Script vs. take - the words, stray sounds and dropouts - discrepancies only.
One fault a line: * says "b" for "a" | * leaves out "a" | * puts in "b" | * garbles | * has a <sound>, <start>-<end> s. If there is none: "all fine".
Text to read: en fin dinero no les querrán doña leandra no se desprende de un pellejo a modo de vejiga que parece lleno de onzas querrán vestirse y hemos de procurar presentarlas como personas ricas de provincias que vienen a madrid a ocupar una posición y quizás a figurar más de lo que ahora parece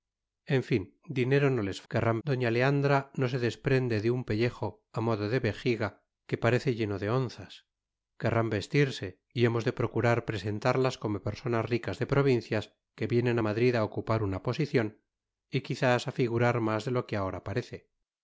all fine